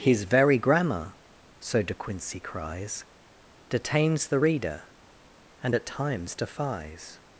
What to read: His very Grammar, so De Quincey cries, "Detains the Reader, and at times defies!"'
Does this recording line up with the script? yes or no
yes